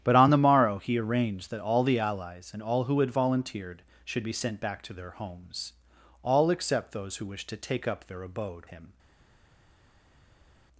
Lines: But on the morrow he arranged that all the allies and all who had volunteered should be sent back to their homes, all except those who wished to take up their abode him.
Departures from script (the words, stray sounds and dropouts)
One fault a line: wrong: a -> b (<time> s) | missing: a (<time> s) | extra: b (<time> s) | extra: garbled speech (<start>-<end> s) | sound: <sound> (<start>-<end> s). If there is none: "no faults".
no faults